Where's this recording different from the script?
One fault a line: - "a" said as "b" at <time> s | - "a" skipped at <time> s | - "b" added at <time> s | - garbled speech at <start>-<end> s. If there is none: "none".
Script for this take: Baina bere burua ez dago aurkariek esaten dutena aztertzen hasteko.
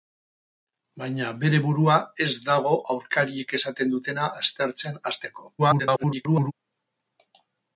- garbled speech at 5.6-6.5 s